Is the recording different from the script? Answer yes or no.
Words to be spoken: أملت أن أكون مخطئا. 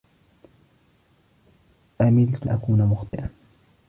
yes